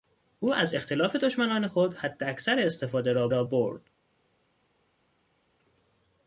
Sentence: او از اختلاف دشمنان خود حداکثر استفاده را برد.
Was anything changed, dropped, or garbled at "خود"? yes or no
no